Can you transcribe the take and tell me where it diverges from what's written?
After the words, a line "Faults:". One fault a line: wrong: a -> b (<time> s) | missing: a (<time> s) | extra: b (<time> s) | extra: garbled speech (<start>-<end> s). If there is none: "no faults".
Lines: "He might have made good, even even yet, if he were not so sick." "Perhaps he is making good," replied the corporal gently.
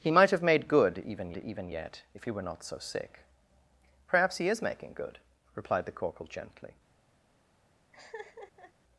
"He might have made good, even even yet, if he were not so sick." "Perhaps he is making good," replied the corporal gently.
Faults:
no faults